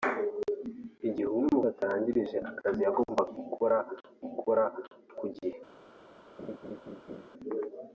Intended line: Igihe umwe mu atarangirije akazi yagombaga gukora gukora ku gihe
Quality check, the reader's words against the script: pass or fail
pass